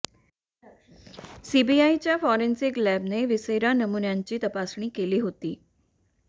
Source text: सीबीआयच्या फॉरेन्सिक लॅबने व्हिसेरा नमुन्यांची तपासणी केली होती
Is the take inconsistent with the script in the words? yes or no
no